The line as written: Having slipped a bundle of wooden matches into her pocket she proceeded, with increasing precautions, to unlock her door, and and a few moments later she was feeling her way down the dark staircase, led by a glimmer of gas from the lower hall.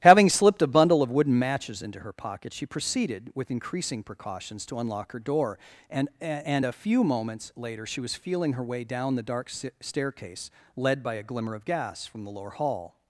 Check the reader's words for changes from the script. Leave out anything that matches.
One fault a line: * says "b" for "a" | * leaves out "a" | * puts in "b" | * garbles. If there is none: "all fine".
all fine